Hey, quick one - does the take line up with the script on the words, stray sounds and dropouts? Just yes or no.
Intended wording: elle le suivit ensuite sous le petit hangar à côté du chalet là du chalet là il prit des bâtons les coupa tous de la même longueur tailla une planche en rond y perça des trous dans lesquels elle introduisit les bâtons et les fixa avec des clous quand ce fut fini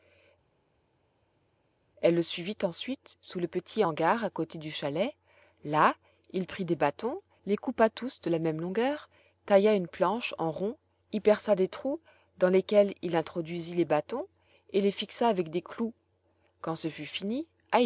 no